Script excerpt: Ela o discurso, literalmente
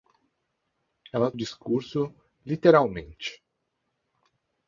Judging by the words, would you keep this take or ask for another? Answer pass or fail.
pass